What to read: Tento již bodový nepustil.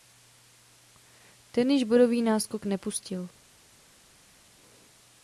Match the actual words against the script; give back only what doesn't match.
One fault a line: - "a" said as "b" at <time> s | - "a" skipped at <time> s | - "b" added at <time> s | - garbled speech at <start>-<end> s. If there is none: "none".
- "Tento" said as "Ten" at 1.5 s
- "náskok" added at 2.2 s